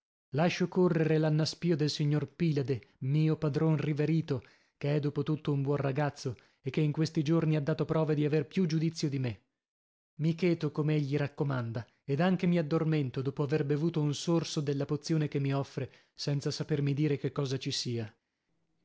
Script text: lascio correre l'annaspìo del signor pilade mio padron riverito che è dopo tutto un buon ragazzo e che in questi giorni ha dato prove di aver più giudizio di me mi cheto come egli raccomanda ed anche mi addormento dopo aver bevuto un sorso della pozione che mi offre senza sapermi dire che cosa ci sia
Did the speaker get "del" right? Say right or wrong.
right